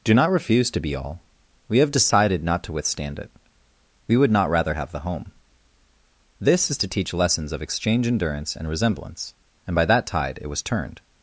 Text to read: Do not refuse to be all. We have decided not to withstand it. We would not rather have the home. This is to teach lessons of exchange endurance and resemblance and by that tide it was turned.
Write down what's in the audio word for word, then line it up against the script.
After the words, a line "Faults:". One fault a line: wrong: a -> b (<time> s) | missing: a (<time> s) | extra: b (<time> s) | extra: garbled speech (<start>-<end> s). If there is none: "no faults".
Do not refuse to be all. We have decided not to withstand it. We would not rather have the home. This is to teach lessons of exchange endurance and resemblance and by that tide it was turned.
Faults:
no faults